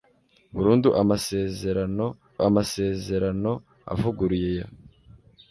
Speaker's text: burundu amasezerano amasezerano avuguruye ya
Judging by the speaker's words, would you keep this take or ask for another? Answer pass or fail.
pass